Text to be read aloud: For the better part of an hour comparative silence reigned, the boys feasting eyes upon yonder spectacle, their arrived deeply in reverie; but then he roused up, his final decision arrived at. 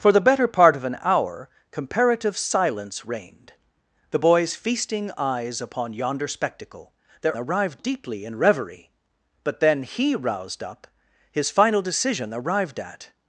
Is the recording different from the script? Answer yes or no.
no